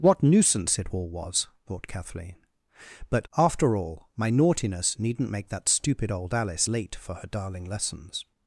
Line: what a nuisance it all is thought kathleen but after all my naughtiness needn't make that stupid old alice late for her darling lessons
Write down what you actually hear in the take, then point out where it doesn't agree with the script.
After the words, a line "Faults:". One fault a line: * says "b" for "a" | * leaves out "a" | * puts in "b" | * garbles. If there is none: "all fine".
what nuisance it all was thought kathleen but after all my naughtiness needn't make that stupid old alice late for her darling lessons
Faults:
* leaves out "a"
* says "was" for "is"